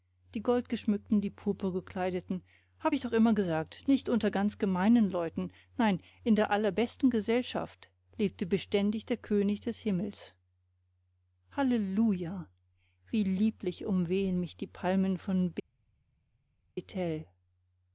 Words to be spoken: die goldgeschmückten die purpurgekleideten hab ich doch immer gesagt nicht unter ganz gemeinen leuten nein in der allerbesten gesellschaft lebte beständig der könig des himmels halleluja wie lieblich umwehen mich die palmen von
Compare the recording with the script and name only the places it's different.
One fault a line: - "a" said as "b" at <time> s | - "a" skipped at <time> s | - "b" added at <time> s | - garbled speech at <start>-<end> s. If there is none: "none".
none